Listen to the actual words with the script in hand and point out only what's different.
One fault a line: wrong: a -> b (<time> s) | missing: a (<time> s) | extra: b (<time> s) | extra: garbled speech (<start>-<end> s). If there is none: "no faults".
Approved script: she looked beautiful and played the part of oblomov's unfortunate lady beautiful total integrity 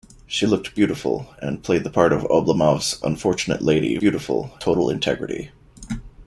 no faults